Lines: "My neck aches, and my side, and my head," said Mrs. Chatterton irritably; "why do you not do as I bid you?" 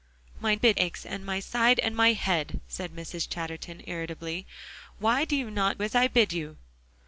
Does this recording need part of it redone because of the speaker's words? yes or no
yes